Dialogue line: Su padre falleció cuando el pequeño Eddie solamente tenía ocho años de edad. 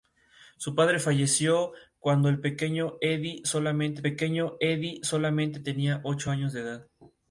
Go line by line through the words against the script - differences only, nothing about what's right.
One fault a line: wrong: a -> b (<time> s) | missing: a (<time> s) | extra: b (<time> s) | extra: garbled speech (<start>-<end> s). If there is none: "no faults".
extra: pequeño Eddie solamente (4.0 s)